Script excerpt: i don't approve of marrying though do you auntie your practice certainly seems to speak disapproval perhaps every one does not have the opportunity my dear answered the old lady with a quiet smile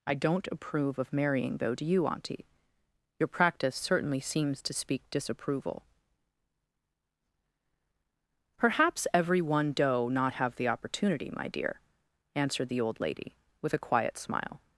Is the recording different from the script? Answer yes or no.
yes